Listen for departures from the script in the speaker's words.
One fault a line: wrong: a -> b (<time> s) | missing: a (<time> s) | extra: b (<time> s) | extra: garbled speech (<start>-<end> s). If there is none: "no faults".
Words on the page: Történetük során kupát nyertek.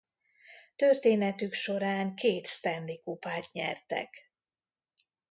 extra: két Stanley (2.1 s)